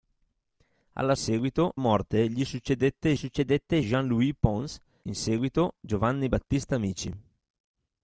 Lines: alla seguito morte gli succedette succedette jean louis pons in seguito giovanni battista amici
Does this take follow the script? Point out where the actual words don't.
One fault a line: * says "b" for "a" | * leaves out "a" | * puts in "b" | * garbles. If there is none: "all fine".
all fine